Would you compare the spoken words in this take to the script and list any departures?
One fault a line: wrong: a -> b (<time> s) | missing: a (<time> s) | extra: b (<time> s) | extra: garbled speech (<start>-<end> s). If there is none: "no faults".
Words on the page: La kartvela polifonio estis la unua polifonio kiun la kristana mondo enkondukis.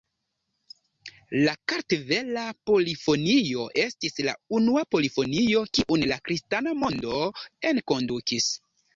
no faults